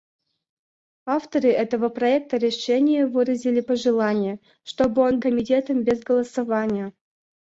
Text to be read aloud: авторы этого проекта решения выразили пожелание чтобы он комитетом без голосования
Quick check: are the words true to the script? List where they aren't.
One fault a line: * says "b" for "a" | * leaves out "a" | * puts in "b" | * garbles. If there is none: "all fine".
all fine